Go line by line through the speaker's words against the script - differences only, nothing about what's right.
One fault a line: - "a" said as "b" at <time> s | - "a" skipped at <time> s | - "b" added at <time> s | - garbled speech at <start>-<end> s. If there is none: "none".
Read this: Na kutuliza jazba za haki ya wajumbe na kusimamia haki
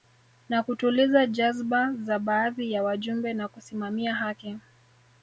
- "haki" said as "baadhi" at 2.2 s